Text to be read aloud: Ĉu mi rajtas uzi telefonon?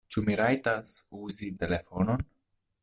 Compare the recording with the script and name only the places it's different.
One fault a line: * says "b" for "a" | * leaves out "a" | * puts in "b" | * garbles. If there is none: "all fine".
all fine